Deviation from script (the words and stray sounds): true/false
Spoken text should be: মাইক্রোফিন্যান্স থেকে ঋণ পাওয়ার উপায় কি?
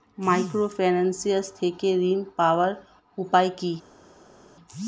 false